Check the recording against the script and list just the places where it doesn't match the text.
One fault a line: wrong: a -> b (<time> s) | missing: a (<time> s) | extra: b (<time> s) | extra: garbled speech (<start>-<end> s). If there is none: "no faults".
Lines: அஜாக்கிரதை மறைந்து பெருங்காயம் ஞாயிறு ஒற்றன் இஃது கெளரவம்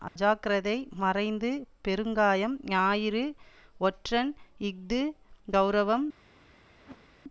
no faults